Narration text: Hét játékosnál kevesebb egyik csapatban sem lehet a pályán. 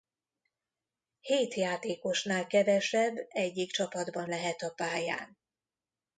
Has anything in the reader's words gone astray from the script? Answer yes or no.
yes